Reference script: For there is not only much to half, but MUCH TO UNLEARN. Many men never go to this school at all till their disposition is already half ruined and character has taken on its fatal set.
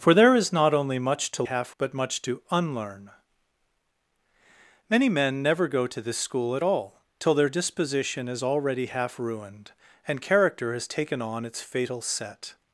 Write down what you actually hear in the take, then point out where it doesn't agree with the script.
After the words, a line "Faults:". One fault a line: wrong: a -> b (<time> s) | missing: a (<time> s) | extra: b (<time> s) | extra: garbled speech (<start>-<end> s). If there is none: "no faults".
For there is not only much to half, but MUCH TO UNLEARN. Many men never go to this school at all till their disposition is already half ruined and character has taken on its fatal set.
Faults:
no faults